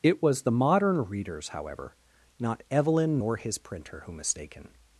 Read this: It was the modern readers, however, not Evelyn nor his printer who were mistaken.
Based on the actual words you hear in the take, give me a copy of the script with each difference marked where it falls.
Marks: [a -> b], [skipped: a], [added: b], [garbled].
It was the modern readers, however, not Evelyn nor his printer who [skipped: were] mistaken.